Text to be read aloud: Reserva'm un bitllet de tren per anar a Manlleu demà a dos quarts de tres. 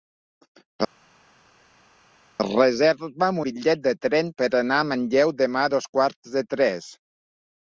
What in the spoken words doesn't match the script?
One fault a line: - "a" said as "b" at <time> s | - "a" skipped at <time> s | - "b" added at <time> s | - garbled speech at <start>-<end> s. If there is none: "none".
- "un" skipped at 3.4 s